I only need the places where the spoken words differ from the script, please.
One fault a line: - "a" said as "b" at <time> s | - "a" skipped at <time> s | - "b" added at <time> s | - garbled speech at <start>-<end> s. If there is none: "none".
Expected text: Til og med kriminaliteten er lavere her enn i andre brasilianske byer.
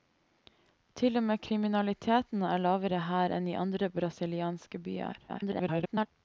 - garbled speech at 5.3-6.1 s